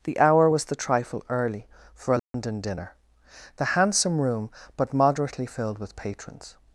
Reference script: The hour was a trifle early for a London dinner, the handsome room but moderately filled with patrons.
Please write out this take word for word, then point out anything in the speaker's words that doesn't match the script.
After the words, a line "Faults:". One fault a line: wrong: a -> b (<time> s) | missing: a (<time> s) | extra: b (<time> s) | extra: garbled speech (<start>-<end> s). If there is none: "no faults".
The hour was the trifle early for a London dinner, the handsome room but moderately filled with patrons.
Faults:
wrong: a -> the (0.6 s)